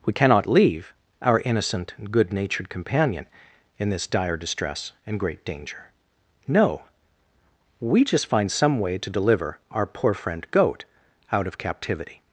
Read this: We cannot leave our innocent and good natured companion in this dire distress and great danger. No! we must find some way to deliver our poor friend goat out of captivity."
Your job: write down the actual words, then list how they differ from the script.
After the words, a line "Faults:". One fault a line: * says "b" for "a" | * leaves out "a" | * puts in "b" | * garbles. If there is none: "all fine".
We cannot leave our innocent and good natured companion in this dire distress and great danger. No! we just find some way to deliver our poor friend goat out of captivity."
Faults:
* says "just" for "must"